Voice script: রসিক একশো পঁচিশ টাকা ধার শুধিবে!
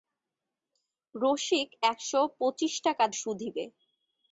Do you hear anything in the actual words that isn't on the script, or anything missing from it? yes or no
yes